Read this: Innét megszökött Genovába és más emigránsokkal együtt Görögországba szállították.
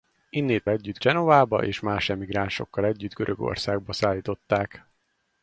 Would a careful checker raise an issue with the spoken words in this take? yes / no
yes